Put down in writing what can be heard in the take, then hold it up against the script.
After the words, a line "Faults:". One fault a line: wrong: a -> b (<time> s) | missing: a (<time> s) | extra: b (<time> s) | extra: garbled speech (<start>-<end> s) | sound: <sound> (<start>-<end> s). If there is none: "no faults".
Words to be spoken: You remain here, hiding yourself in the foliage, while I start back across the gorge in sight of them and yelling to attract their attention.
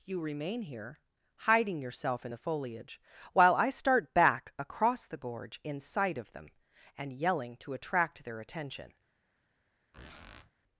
You remain here, hiding yourself in the foliage, while I start back across the gorge in sight of them and yelling to attract their attention.
Faults:
sound: squeak (9.9-10.5 s)